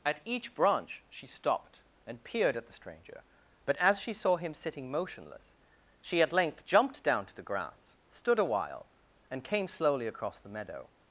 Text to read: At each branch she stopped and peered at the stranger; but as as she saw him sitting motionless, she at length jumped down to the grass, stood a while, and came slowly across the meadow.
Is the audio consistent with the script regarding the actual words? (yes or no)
no